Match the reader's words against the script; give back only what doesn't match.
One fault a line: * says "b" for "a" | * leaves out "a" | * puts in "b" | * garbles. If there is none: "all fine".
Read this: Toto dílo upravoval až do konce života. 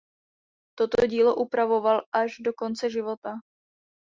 all fine